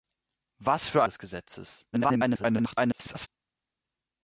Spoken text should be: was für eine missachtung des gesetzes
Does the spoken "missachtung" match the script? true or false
false